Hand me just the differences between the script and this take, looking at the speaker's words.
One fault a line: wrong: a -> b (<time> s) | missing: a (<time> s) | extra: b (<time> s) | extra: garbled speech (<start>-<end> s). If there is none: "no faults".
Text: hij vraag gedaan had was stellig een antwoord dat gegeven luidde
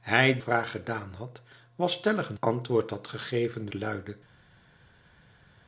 no faults